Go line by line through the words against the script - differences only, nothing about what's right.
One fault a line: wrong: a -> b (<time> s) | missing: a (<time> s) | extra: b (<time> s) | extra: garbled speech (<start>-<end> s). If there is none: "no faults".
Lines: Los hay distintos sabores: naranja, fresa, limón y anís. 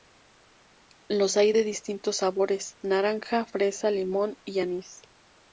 extra: de (1.5 s)